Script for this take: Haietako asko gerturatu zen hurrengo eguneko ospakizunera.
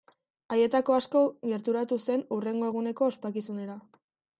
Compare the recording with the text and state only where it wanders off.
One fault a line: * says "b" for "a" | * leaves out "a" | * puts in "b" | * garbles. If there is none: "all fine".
all fine